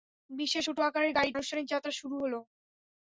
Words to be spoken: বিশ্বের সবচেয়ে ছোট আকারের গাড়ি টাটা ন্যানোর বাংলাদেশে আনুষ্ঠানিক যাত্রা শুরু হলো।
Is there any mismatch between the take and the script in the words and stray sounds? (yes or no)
yes